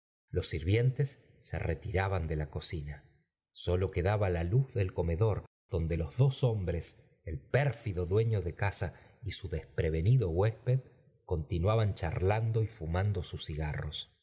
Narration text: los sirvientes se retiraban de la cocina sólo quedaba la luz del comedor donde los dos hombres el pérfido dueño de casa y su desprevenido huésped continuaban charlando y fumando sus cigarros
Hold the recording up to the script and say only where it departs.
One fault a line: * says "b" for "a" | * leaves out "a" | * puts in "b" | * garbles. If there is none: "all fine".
all fine